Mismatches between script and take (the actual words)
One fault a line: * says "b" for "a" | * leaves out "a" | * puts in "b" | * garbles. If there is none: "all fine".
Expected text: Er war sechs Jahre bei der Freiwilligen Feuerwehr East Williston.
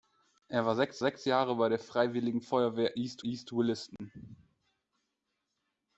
* puts in "sechs"
* puts in "East"